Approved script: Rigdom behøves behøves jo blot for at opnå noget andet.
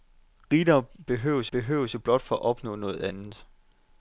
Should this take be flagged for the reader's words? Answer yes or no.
no